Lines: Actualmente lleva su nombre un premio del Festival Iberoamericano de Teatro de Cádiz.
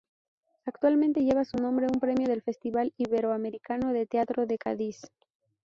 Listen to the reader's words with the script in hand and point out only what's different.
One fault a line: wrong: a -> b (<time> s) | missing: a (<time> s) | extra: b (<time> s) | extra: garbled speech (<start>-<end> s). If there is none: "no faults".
no faults